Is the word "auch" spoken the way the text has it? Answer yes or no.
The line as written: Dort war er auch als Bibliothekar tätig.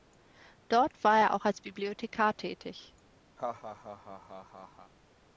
yes